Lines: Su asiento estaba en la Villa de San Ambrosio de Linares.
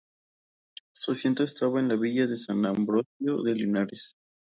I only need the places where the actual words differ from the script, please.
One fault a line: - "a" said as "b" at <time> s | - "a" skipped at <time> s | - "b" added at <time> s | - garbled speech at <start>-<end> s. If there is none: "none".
none